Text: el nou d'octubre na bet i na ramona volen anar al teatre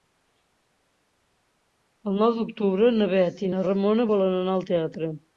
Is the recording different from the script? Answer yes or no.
no